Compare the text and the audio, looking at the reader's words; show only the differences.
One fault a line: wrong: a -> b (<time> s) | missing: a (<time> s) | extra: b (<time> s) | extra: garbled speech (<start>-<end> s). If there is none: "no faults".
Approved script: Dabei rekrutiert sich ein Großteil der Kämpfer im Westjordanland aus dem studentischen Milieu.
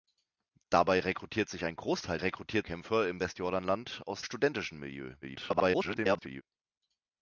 wrong: der -> rekrutiert (2.2 s)
missing: dem (4.2 s)
extra: garbled speech (5.2-6.4 s)